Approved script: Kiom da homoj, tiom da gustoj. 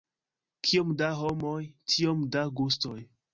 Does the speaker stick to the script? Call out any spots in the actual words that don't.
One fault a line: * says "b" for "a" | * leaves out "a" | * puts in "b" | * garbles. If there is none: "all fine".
all fine